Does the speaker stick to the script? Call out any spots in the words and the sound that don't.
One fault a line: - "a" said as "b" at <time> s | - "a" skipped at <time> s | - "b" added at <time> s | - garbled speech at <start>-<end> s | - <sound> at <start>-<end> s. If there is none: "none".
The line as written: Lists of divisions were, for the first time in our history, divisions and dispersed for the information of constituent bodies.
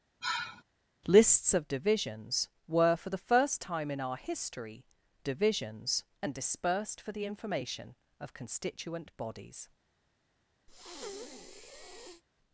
- sigh at 0.2-0.6 s
- breath at 10.7-12.2 s